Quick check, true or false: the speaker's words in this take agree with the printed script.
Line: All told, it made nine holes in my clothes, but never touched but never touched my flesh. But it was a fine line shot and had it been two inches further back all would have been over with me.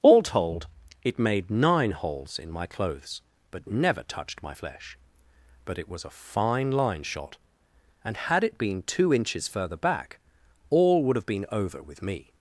false